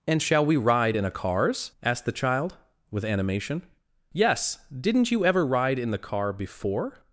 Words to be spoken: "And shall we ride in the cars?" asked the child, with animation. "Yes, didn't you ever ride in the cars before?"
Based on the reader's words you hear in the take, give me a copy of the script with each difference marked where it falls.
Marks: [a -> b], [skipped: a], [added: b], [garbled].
"And shall we ride in [the -> a] cars?" asked the child, with animation. "Yes, didn't you ever ride in the [cars -> car] before?"